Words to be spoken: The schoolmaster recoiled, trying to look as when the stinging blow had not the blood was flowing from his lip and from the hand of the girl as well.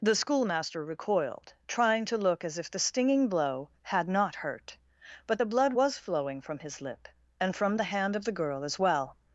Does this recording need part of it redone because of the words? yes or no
yes